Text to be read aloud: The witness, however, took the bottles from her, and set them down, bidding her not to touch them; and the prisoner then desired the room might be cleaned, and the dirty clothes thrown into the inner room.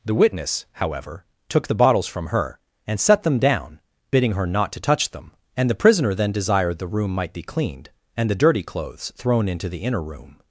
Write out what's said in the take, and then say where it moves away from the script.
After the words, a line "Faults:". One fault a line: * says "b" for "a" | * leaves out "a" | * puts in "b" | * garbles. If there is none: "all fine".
The witness, however, took the bottles from her, and set them down, bidding her not to touch them; and the prisoner then desired the room might be cleaned, and the dirty clothes thrown into the inner room.
Faults:
all fine